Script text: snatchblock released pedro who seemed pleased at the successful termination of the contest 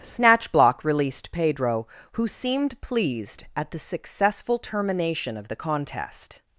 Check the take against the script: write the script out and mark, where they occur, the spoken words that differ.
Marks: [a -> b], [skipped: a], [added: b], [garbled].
snatchblock released pedro who seemed pleased at the successful termination of the contest